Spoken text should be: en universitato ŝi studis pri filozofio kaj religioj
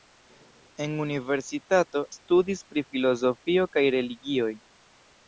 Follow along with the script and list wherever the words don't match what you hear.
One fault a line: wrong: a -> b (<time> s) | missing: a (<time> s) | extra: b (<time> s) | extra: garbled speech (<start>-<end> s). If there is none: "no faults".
missing: ŝi (2.0 s)